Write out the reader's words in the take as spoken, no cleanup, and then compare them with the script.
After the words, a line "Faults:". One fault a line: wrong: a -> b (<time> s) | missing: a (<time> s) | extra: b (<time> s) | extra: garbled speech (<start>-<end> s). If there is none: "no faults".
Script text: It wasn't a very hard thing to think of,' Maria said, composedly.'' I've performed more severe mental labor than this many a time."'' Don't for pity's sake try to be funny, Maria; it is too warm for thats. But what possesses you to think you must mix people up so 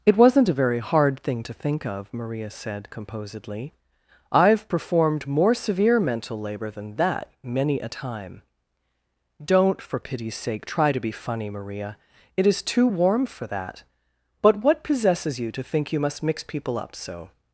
It wasn't a very hard thing to think of,' Maria said, composedly.'' I've performed more severe mental labor than that many a time."'' Don't for pity's sake try to be funny, Maria; it is too warm for that. But what possesses you to think you must mix people up so
Faults:
wrong: this -> that (7.0 s)
wrong: thats -> that (13.5 s)